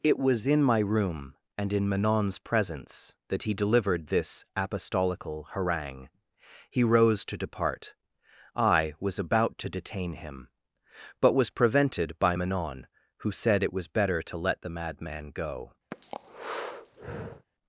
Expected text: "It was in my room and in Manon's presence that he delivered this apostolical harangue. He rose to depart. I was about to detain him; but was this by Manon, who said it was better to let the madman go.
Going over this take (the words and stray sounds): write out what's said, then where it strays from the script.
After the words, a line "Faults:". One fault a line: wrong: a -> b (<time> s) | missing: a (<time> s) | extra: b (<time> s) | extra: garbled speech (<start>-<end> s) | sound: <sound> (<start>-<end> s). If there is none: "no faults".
"It was in my room and in Manon's presence that he delivered this apostolical harangue. He rose to depart. I was about to detain him; but was prevented by Manon, who said it was better to let the madman go.
Faults:
wrong: this -> prevented (11.5 s)
sound: breath (15.9-17.5 s)